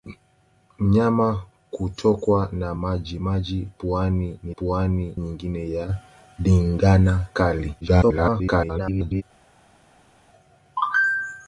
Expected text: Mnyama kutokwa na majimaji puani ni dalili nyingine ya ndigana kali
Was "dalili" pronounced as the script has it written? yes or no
no